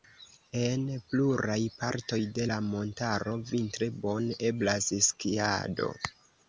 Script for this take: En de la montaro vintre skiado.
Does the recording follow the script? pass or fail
fail